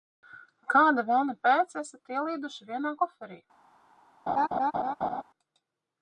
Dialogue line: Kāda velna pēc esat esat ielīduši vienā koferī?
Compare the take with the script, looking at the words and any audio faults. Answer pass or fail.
fail